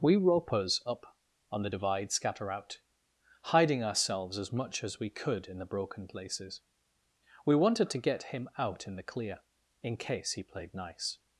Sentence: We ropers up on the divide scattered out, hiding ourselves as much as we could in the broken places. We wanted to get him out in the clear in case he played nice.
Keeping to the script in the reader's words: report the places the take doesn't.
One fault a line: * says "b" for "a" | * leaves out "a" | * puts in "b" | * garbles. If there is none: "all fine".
* says "scatter" for "scattered"